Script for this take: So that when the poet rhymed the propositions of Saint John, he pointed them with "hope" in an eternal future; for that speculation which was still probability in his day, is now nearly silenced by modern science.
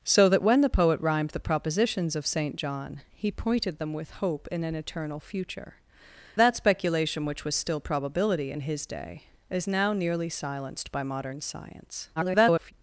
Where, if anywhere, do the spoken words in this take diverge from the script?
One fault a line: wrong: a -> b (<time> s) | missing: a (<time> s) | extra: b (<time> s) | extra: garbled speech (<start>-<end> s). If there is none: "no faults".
missing: for (5.8 s)
extra: garbled speech (12.2-12.7 s)